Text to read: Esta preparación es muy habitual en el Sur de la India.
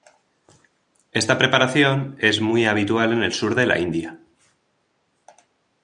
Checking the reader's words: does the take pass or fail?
pass